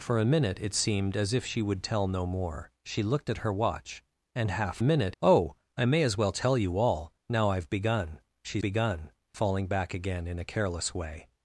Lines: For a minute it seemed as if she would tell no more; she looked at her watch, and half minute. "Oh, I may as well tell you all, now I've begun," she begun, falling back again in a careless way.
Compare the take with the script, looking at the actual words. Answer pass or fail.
pass